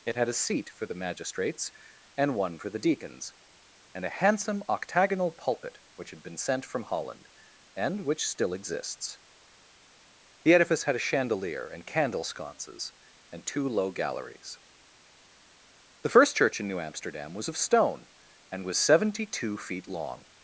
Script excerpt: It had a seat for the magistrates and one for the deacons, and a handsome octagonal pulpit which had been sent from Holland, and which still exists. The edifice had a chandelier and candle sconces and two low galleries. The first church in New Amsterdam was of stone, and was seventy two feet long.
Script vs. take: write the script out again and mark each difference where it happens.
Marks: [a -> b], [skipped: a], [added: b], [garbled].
It had a seat for the magistrates and one for the deacons, and a handsome octagonal pulpit which had been sent from Holland, and which still exists. The edifice had a chandelier and candle sconces and two low galleries. The first church in New Amsterdam was of stone, and was seventy two feet long.